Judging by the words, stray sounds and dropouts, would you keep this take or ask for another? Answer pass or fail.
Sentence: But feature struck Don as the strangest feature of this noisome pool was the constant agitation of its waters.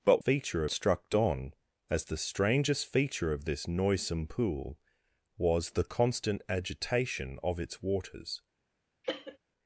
fail